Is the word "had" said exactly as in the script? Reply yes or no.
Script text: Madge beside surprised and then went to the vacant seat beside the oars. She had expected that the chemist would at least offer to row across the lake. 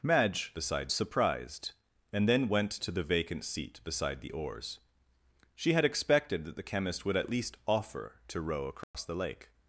yes